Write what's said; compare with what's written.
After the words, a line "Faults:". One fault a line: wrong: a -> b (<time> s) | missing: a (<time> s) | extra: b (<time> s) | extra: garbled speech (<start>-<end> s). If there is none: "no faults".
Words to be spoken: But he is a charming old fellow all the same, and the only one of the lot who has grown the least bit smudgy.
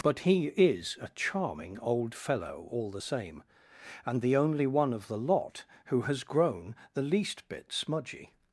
But he is a charming old fellow all the same, and the only one of the lot who has grown the least bit smudgy.
Faults:
no faults